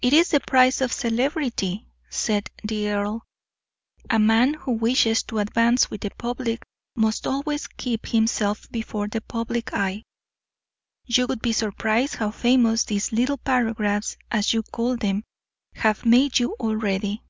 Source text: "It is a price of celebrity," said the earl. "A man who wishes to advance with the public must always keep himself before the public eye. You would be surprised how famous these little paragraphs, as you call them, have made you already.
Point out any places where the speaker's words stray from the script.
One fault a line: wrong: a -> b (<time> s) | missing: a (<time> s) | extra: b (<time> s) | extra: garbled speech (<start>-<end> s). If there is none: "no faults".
wrong: a -> the (0.3 s)